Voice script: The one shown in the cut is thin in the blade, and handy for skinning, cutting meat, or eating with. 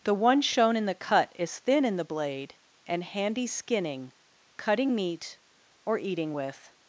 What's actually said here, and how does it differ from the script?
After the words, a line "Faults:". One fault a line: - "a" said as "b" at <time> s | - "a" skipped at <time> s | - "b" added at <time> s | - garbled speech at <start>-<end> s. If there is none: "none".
The one shown in the cut is thin in the blade, and handy skinning, cutting meat, or eating with.
Faults:
- "for" skipped at 3.5 s